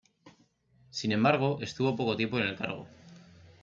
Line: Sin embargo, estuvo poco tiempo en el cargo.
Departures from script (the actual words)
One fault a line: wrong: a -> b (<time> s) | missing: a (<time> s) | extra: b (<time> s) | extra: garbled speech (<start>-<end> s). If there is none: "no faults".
no faults